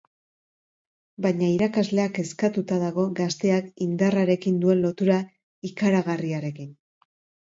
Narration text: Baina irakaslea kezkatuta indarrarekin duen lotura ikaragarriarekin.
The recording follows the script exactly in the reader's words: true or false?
false